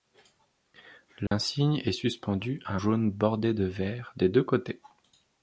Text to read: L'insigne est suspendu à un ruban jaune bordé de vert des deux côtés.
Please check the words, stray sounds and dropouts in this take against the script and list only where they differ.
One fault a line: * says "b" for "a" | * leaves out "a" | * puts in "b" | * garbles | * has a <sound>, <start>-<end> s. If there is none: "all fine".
* has a dropout, 1.3-1.3 s
* leaves out "un ruban"